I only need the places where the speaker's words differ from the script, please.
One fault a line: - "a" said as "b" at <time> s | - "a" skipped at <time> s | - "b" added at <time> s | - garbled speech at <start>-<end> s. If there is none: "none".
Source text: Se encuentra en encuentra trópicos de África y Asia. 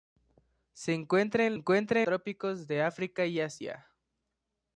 none